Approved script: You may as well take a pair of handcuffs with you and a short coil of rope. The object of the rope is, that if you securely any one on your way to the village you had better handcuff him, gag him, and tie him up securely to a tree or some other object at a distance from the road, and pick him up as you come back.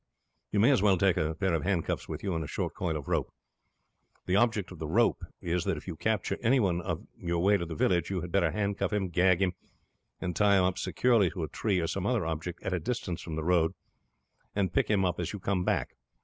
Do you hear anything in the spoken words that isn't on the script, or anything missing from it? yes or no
yes